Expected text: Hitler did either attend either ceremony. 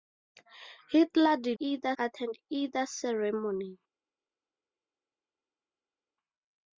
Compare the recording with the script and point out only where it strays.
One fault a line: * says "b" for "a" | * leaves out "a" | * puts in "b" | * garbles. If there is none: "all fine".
all fine